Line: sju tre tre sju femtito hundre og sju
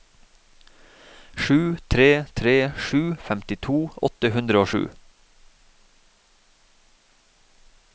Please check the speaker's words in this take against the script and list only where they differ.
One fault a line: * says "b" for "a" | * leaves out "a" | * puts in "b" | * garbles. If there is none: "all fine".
* puts in "åtte"